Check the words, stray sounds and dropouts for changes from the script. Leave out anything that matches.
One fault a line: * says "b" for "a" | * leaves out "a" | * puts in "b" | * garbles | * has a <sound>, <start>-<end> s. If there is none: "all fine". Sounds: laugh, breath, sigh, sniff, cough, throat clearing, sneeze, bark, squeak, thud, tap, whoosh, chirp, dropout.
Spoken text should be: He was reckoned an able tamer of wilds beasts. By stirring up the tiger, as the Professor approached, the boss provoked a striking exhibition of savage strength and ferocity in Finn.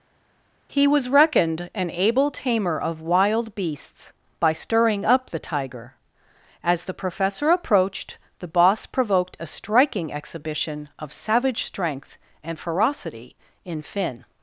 * says "wild" for "wilds"